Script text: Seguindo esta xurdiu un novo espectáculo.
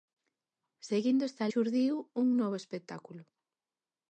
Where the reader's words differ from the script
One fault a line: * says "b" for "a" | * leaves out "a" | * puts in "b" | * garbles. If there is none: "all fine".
all fine